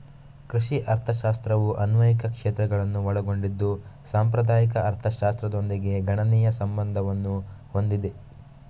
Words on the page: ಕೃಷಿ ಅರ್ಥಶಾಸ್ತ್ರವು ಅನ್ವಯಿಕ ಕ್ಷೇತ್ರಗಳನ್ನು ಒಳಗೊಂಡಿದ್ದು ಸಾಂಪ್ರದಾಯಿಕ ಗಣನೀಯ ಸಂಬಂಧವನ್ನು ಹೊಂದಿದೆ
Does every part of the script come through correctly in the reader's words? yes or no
no